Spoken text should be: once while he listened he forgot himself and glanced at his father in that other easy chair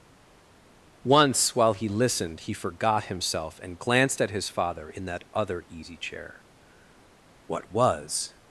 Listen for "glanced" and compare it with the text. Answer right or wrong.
right